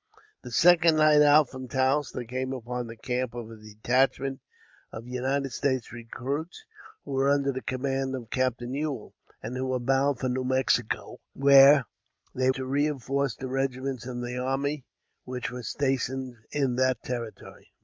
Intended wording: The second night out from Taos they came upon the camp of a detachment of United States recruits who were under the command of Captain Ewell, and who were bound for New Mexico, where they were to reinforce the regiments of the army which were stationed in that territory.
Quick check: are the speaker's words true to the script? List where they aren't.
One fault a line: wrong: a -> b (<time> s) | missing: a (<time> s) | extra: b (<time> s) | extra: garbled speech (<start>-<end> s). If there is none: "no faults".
missing: were (12.5 s)